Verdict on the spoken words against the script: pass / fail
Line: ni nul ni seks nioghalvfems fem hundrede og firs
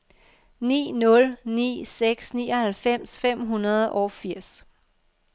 pass